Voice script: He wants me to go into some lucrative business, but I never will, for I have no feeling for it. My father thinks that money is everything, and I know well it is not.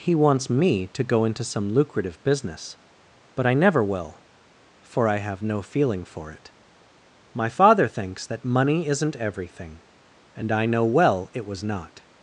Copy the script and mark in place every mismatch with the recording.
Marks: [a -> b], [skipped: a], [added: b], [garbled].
He wants me to go into some lucrative business, but I never will, for I have no feeling for it. My father thinks that money [is -> isn't] everything, and I know well it [is -> was] not.